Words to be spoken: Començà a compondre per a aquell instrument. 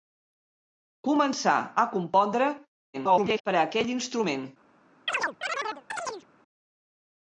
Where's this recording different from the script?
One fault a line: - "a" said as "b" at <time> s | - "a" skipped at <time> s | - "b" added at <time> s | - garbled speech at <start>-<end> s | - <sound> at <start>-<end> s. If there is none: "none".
- garbled speech at 2.9-3.4 s
- chirp at 5.1-6.3 s